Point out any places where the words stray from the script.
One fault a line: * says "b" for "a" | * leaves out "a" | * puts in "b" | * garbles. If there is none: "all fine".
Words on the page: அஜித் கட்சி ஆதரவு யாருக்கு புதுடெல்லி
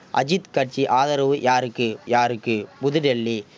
* puts in "யாருக்கு"